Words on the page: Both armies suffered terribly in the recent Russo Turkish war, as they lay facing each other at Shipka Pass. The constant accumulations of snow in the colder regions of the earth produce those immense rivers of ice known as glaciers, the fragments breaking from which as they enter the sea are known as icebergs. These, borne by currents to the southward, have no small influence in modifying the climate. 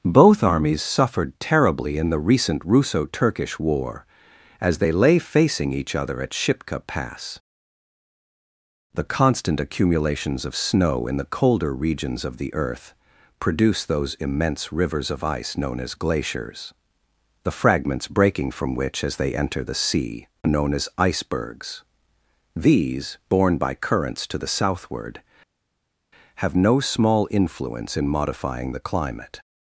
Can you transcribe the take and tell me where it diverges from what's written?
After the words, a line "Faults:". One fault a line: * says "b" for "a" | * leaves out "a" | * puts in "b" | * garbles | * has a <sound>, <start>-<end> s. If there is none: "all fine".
Both armies suffered terribly in the recent Russo Turkish war, as they lay facing each other at Shipka Pass. The constant accumulations of snow in the colder regions of the earth produce those immense rivers of ice known as glaciers, the fragments breaking from which as they enter the sea known as icebergs. These, borne by currents to the southward, have no small influence in modifying the climate.
Faults:
* leaves out "are"